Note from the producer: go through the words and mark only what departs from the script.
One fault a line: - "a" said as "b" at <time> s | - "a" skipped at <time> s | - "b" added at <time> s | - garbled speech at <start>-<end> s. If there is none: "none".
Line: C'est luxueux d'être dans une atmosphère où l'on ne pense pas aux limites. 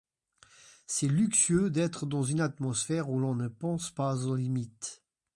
none